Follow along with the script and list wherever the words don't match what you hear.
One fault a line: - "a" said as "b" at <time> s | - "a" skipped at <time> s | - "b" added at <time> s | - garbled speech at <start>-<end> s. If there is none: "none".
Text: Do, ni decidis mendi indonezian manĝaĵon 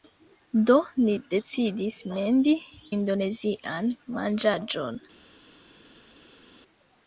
none